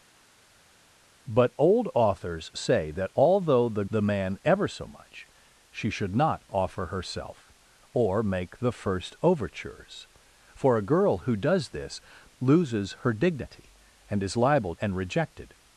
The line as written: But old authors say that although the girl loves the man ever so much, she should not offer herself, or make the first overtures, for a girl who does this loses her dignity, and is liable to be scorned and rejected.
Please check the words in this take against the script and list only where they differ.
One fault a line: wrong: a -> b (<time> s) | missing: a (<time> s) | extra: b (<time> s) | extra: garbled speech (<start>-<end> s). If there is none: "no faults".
missing: girl loves (3.8 s)
missing: to be scorned (14.7 s)